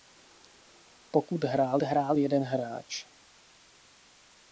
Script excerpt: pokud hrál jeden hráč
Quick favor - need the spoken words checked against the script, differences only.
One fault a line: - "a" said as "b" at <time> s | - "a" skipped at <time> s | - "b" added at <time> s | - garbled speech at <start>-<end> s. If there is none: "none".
- "hrál" added at 1.8 s